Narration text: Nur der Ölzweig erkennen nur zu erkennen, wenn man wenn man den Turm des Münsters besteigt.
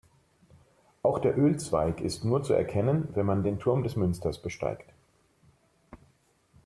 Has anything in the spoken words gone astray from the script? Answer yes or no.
yes